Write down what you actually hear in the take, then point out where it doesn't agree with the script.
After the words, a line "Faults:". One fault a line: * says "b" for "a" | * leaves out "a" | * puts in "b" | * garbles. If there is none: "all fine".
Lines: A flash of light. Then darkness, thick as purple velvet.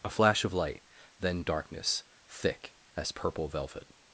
A flash of light. Then darkness, thick as purple velvet.
Faults:
all fine